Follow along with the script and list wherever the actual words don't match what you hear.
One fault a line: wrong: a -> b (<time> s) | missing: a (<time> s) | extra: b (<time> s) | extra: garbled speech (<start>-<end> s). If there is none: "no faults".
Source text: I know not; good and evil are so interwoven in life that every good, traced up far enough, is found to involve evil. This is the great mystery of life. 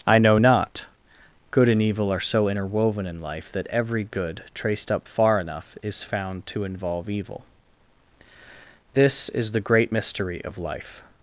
no faults